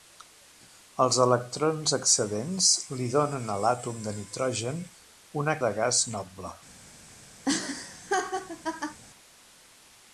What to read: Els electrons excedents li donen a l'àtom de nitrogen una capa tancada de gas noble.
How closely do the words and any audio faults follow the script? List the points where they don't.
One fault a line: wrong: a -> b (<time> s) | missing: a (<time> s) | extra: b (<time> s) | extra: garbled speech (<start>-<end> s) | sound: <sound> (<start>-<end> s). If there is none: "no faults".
missing: capa tancada (5.6 s)
sound: laugh (7.4-9.0 s)